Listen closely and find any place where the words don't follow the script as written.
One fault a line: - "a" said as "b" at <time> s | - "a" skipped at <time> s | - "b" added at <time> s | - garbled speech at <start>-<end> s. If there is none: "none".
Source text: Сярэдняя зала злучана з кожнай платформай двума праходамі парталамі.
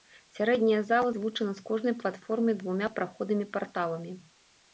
none